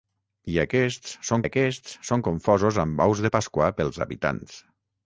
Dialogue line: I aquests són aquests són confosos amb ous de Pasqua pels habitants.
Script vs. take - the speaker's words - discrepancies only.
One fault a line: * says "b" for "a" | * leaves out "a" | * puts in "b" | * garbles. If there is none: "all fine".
all fine